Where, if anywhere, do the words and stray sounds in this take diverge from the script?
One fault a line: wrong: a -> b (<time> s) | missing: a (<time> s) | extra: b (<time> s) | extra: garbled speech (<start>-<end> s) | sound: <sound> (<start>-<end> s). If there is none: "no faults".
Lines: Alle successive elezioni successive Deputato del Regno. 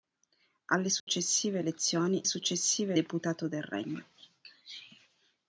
sound: dropout (1.0-1.1 s)